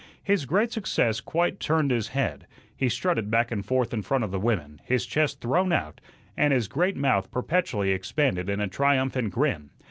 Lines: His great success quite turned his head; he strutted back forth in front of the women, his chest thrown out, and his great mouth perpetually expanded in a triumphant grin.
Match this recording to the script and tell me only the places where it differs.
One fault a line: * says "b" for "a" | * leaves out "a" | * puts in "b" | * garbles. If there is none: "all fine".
* puts in "and"